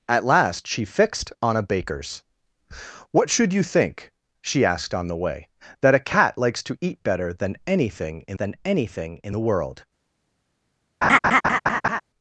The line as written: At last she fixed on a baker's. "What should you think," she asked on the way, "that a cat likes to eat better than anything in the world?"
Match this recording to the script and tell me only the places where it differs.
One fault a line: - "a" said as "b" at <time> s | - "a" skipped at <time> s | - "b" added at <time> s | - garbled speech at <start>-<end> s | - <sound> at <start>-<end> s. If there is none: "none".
- "than anything in" added at 8.3 s
- laugh at 11.0-12.0 s